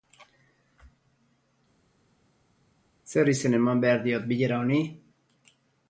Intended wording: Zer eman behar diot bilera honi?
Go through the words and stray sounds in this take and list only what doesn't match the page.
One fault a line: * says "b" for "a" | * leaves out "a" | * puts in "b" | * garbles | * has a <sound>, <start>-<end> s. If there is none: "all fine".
* puts in "izen"